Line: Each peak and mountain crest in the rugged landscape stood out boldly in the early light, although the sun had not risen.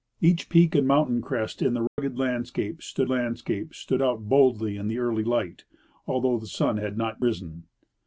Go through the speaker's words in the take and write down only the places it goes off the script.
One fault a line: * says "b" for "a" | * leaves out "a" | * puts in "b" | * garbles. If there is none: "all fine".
* puts in "landscape stood"